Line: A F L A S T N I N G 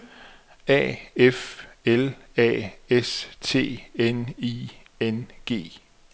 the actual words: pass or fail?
pass